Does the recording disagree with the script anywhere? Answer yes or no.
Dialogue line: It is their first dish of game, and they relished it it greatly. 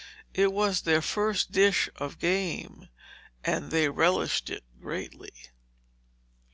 yes